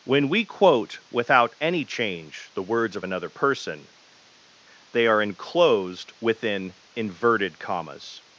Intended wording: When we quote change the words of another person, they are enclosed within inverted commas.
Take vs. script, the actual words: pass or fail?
fail